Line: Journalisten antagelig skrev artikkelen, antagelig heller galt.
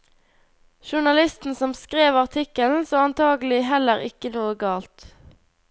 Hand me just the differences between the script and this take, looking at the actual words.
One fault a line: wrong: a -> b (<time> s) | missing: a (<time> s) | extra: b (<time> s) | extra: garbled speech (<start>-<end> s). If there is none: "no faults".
wrong: antagelig -> som (1.6 s)
extra: så (2.8 s)
extra: ikke noe (4.1 s)